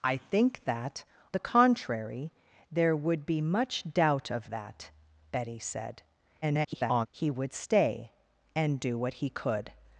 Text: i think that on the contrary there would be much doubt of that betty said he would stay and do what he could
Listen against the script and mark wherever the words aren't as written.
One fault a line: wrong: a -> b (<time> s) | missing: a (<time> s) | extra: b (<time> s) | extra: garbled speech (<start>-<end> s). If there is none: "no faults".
missing: on (1.0 s)
extra: garbled speech (6.4-7.1 s)